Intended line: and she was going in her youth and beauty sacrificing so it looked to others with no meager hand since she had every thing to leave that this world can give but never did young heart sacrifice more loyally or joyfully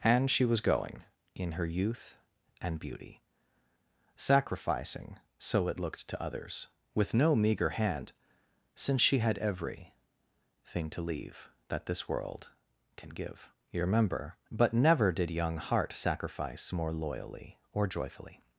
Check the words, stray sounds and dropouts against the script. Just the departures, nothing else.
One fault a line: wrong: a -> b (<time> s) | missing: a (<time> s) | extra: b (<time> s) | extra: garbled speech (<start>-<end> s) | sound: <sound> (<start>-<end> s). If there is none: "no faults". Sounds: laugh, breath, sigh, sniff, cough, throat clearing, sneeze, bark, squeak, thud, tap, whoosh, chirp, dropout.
extra: you remember (13.7 s)